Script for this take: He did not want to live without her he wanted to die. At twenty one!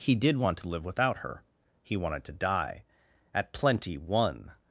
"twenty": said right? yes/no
no